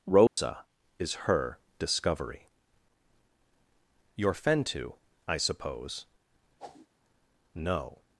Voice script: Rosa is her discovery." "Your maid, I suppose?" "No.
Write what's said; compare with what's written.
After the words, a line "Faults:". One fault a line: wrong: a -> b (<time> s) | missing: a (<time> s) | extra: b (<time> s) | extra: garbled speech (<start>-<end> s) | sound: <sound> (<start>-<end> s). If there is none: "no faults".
Rosa is her discovery." "Your fentu, I suppose?" "No.
Faults:
sound: dropout (0.3-0.4 s)
wrong: maid -> fentu (4.3 s)
sound: whoosh (6.6-6.9 s)